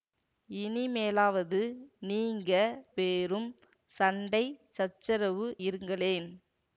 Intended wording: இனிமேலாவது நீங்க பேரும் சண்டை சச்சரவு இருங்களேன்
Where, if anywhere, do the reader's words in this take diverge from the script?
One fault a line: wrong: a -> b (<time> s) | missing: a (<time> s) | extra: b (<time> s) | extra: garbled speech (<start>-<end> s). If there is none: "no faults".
no faults